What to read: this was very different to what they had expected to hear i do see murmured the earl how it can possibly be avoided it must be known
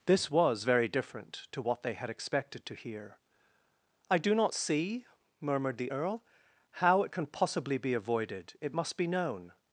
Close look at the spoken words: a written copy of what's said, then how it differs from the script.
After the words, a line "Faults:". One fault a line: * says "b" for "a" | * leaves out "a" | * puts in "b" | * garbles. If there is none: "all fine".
this was very different to what they had expected to hear i do not see murmured the earl how it can possibly be avoided it must be known
Faults:
* puts in "not"